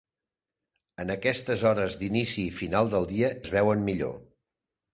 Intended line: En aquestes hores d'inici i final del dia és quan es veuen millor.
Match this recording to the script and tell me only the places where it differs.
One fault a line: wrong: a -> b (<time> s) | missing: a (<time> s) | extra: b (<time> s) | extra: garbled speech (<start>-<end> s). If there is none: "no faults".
missing: és quan (3.3 s)